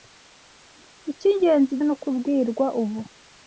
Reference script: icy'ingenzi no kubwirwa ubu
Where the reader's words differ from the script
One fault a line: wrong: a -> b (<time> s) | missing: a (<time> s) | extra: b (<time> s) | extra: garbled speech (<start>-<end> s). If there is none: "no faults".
no faults